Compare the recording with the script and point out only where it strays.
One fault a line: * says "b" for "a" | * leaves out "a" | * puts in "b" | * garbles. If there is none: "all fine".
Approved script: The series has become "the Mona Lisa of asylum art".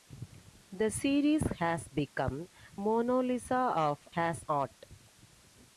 * leaves out "the"
* says "has" for "asylum"